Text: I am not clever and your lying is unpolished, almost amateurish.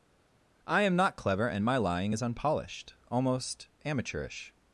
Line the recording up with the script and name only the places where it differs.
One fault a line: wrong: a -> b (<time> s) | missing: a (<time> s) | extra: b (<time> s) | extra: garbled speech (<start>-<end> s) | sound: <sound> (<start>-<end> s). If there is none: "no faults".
wrong: your -> my (1.7 s)